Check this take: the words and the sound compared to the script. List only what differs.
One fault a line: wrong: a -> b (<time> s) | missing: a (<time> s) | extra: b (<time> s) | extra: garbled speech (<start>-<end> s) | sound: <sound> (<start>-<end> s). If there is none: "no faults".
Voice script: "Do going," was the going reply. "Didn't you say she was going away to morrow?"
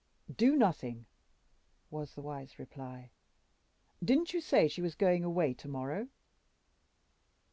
wrong: going -> nothing (0.6 s)
wrong: going -> wise (2.2 s)